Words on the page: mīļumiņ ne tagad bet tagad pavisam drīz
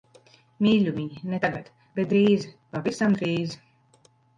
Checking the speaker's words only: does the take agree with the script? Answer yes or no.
no